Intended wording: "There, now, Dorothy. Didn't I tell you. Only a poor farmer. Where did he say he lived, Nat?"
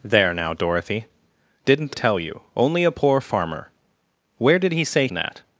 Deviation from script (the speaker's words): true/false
true